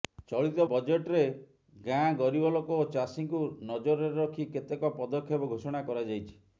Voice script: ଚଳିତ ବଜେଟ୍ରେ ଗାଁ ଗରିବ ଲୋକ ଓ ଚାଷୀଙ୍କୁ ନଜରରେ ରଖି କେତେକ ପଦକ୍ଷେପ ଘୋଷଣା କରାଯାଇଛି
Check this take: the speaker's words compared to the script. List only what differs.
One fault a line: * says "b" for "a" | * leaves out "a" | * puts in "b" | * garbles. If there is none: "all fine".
all fine